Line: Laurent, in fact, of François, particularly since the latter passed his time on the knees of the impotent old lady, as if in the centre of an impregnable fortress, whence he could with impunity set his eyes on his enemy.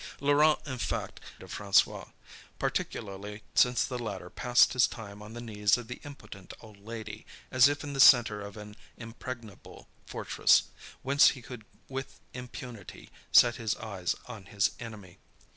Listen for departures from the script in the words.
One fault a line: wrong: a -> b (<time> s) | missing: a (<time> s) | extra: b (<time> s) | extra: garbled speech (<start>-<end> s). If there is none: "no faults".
no faults